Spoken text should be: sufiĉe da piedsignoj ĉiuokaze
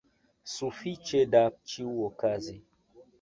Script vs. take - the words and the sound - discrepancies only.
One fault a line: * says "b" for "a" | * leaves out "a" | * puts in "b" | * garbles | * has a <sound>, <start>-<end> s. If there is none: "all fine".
* leaves out "piedsignoj"